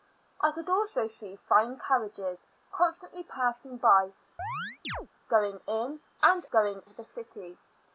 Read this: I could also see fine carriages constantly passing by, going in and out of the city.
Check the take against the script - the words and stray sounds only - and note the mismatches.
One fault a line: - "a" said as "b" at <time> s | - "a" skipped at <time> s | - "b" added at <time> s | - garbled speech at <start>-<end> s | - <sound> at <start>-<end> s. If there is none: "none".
- chirp at 4.4-5.1 s
- "out" said as "going" at 6.5 s